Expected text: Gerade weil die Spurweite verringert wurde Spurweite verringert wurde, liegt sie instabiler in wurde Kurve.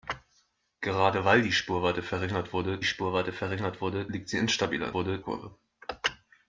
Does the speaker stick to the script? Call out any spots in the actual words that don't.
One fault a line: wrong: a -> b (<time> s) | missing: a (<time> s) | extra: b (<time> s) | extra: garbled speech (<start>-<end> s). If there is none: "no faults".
no faults